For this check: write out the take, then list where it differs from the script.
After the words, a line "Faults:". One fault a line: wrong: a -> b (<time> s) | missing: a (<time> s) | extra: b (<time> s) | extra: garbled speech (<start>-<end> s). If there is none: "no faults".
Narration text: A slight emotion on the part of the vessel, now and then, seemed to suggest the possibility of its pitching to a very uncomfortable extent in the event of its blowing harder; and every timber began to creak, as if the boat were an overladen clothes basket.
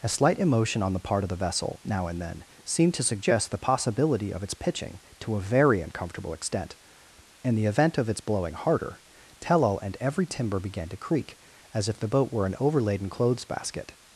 A slight emotion on the part of the vessel, now and then, seemed to suggest the possibility of its pitching to a very uncomfortable extent in the event of its blowing harder; tell all and every timber began to creak, as if the boat were an overladen clothes basket.
Faults:
extra: tell all (9.4 s)